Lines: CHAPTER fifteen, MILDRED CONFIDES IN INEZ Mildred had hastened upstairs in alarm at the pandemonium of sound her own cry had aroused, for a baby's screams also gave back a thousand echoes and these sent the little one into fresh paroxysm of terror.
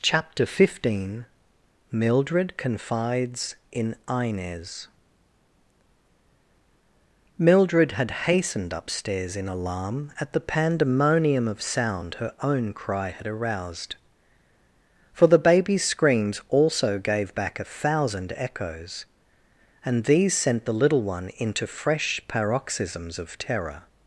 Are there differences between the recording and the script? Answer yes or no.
yes